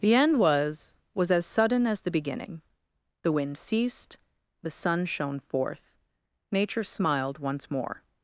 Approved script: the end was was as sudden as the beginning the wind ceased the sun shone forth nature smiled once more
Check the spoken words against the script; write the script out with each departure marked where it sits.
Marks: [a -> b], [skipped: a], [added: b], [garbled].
the end was was as sudden as the beginning the wind ceased the sun shone forth nature smiled once more